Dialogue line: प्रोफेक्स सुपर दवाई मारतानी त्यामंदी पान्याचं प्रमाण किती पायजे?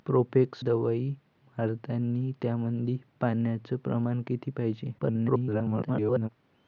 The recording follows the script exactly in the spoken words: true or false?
false